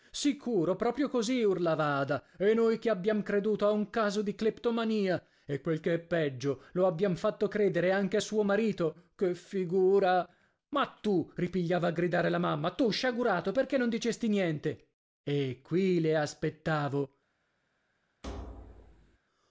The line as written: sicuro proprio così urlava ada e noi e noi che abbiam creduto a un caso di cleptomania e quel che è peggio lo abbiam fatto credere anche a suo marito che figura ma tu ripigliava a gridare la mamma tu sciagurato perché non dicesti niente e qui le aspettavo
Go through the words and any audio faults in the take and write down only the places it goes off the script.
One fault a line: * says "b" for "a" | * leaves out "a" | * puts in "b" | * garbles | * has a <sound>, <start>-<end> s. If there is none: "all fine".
* leaves out "e noi"
* has a thud, 18.2-19.2 s